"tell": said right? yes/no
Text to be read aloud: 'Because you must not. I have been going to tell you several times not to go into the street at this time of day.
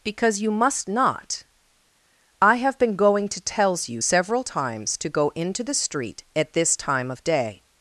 no